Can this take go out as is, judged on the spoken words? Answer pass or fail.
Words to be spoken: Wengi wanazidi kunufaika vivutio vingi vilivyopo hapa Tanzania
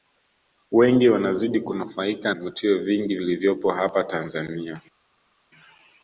pass